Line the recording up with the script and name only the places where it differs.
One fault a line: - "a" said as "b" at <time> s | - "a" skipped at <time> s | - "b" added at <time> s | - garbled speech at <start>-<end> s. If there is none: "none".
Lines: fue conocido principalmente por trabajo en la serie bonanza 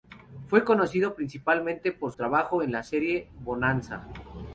none